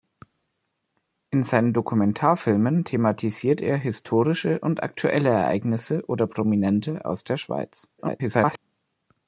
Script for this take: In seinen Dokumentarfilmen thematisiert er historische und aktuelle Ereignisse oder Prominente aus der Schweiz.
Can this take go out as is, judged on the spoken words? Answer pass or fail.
fail